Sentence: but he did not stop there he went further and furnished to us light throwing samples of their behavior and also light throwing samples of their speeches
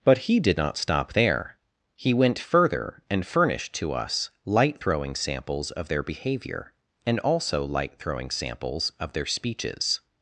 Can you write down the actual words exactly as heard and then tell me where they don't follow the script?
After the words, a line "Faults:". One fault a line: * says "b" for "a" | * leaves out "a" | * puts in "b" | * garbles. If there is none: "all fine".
but he did not stop there he went further and furnished to us light throwing samples of their behavior and also light throwing samples of their speeches
Faults:
all fine